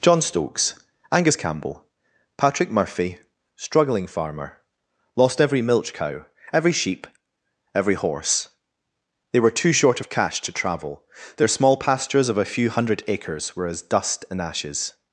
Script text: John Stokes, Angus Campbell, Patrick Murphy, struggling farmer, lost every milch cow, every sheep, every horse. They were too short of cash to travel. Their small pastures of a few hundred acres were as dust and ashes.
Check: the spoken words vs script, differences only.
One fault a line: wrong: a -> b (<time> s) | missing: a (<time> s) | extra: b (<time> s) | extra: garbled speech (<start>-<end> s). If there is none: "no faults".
no faults